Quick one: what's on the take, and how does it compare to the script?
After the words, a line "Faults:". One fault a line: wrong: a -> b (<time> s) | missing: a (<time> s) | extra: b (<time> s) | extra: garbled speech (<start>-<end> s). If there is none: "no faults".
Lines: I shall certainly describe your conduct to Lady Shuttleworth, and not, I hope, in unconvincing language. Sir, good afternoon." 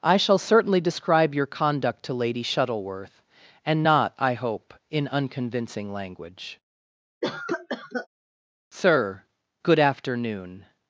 I shall certainly describe your conduct to Lady Shuttleworth, and not, I hope, in unconvincing language. Sir, good afternoon."
Faults:
no faults